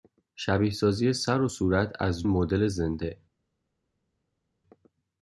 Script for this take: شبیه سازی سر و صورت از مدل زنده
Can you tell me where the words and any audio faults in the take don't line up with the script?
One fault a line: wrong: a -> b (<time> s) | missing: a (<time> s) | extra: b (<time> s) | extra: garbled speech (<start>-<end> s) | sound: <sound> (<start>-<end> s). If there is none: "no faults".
no faults